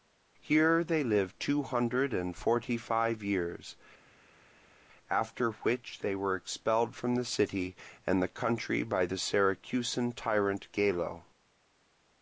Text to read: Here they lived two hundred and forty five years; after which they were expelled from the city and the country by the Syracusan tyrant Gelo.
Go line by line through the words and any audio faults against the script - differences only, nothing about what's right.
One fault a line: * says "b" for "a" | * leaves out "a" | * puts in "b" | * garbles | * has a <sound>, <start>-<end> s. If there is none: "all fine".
all fine